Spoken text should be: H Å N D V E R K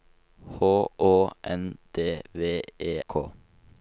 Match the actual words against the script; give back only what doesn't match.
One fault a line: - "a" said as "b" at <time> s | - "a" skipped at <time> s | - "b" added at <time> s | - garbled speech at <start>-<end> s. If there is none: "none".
- "R" skipped at 2.9 s